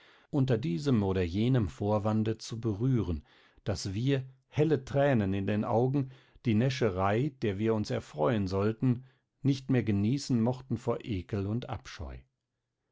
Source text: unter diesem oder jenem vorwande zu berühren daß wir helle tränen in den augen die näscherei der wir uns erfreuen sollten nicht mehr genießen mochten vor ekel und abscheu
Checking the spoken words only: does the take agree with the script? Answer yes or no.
yes